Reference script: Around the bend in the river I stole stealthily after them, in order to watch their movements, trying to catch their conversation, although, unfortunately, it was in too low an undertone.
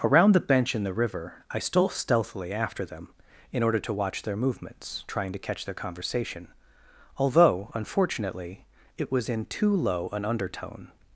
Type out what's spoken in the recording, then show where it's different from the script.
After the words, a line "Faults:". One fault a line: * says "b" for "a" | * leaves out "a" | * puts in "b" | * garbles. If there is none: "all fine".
Around the bench in the river I stole stealthily after them, in order to watch their movements, trying to catch their conversation, although, unfortunately, it was in too low an undertone.
Faults:
* says "bench" for "bend"